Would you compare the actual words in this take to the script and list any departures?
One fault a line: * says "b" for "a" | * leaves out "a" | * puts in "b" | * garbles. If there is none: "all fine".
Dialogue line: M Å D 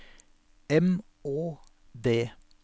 all fine